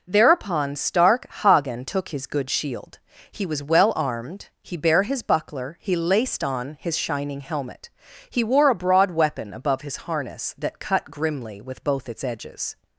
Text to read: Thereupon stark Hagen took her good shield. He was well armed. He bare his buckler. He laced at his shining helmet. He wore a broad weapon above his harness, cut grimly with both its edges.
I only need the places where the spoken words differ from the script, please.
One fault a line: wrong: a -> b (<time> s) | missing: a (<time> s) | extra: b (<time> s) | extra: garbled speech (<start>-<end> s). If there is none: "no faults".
wrong: her -> his (2.1 s)
wrong: at -> on (6.4 s)
extra: that (10.6 s)